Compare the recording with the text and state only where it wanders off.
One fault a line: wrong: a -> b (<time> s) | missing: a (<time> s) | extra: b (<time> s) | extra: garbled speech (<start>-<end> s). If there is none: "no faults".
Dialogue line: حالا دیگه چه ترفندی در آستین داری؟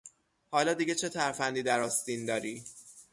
no faults